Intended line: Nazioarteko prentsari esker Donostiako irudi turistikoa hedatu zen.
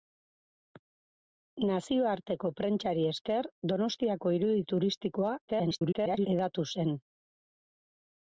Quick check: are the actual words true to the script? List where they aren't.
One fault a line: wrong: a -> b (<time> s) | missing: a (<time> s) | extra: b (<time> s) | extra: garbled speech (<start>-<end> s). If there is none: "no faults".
extra: garbled speech (5.5-6.3 s)